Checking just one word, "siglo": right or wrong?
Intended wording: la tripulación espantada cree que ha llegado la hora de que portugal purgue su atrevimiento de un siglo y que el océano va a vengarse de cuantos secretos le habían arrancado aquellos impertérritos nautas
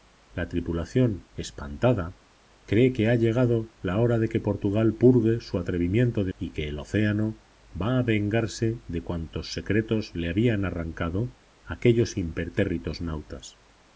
wrong